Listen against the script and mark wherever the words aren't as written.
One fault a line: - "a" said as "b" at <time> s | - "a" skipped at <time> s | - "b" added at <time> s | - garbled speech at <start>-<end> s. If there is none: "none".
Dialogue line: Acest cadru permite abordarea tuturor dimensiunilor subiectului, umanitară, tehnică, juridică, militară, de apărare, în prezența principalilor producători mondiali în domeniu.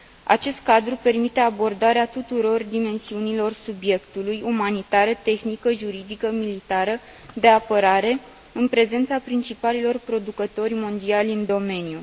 none